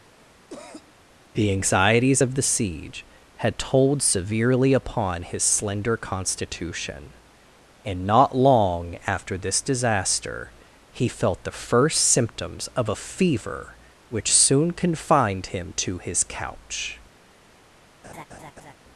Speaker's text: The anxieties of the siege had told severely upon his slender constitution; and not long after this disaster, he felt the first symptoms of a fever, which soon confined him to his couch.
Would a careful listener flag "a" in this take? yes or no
no